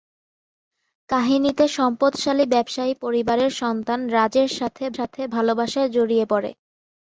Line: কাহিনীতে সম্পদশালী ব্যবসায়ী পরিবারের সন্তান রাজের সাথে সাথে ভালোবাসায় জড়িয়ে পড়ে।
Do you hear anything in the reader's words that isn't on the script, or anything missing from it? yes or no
no